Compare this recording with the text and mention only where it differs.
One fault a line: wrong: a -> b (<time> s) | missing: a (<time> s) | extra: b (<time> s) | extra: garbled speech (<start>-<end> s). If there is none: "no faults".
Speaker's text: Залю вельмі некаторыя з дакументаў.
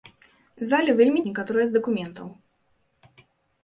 no faults